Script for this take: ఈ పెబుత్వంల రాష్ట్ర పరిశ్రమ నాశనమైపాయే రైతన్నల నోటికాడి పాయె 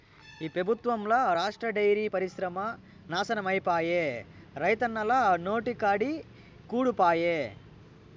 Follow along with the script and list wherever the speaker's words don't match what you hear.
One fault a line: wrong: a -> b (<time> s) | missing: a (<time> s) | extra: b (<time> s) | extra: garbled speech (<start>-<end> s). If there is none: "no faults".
extra: డైరీ (1.7 s)
extra: కూడు (6.7 s)